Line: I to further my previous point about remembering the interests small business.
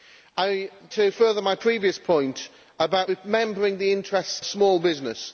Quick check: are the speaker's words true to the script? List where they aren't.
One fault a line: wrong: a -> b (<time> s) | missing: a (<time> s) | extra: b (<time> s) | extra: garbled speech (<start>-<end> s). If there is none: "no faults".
no faults